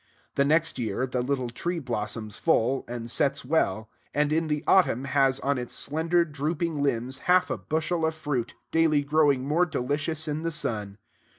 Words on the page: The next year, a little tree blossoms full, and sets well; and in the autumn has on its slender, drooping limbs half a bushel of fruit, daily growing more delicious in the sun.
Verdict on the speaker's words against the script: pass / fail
fail